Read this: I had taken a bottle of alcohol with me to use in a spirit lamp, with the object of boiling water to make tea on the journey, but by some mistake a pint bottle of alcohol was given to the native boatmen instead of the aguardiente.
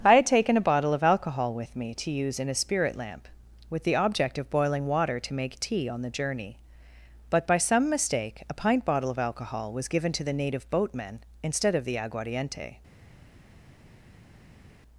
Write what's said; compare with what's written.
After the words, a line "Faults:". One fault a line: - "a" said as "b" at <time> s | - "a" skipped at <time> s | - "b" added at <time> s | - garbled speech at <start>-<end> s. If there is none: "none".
I had taken a bottle of alcohol with me to use in a spirit lamp, with the object of boiling water to make tea on the journey, but by some mistake a pint bottle of alcohol was given to the native boatmen instead of the aguardiente.
Faults:
none